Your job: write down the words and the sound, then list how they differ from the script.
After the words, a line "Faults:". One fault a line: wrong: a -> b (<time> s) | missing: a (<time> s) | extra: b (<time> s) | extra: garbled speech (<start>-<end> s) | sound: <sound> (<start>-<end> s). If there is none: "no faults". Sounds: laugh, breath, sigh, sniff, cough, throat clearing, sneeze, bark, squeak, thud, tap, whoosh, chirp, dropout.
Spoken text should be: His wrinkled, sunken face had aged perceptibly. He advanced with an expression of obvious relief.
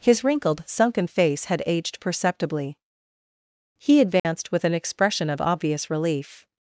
His wrinkled, sunken face had aged perceptibly. He advanced with an expression of obvious relief.
Faults:
sound: dropout (4.2-4.2 s)